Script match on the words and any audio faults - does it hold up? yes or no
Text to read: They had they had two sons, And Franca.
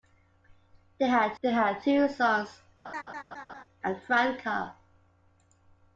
no